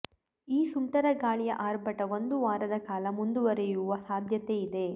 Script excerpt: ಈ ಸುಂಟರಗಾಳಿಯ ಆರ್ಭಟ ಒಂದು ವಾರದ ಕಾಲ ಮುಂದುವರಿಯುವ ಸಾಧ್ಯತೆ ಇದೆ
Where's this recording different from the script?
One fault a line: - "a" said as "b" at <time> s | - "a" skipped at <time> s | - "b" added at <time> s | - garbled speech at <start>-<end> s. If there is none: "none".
none